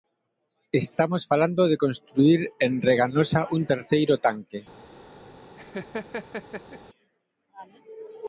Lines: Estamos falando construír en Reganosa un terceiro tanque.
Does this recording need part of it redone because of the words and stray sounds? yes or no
yes